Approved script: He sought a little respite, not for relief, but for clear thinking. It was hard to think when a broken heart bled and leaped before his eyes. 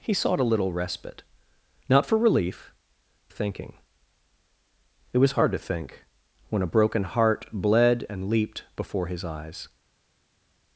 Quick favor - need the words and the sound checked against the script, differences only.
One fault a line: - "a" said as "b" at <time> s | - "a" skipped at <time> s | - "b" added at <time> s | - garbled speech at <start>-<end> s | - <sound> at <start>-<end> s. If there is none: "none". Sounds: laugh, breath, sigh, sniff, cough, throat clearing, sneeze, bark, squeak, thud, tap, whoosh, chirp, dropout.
- "but for clear" skipped at 2.7 s